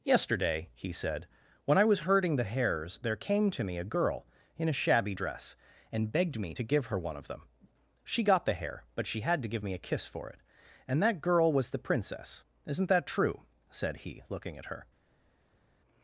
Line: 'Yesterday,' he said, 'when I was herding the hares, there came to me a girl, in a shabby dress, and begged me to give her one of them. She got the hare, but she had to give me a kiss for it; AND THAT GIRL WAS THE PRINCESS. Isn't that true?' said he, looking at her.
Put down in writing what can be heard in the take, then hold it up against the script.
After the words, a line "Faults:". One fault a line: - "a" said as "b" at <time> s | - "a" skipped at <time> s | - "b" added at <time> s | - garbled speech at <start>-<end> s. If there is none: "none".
'Yesterday,' he said, 'when I was herding the hares, there came to me a girl, in a shabby dress, and begged me to give her one of them. She got the hare, but she had to give me a kiss for it; AND THAT GIRL WAS THE PRINCESS. Isn't that true?' said he, looking at her.
Faults:
none